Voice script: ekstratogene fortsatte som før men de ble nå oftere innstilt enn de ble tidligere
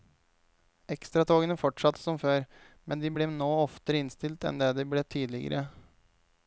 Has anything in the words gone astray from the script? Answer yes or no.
no